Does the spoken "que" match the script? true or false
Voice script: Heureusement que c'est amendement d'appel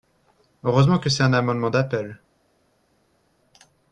true